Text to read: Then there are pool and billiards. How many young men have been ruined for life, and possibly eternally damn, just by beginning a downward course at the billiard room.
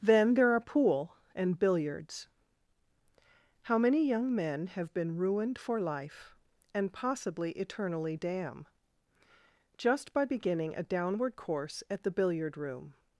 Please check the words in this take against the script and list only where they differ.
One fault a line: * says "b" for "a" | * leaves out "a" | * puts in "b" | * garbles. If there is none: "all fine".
all fine